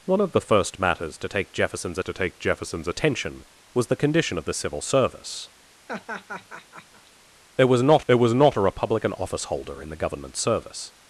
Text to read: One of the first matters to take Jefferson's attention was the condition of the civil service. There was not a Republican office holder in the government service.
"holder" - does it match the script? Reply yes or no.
yes